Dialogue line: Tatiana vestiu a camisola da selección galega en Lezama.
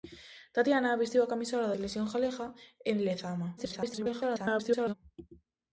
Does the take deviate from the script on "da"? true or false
true